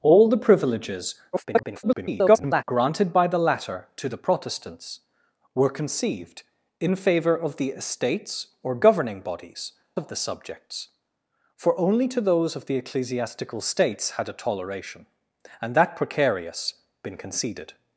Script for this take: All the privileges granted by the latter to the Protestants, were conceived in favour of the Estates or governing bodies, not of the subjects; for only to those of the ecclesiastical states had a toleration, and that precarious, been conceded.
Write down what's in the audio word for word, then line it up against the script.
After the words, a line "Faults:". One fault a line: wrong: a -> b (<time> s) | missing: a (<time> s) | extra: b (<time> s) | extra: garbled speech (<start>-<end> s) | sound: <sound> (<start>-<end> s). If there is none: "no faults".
All the privileges [garbled] granted by the latter to the Protestants, were conceived in favour of the Estates or governing bodies, of the subjects; for only to those of the ecclesiastical states had a toleration, and that precarious, been conceded.
Faults:
extra: garbled speech (1.3-2.6 s)
missing: not (9.7 s)